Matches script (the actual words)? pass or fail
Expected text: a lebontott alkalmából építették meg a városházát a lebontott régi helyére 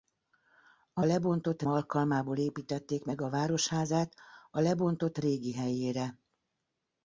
pass